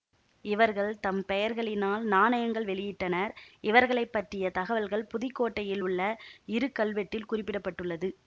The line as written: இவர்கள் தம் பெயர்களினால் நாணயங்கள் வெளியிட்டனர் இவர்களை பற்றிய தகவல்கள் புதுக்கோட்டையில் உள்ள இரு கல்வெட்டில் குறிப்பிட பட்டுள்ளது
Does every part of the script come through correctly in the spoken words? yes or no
yes